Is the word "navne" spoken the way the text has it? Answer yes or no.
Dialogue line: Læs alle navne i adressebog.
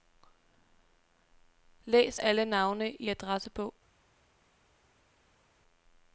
yes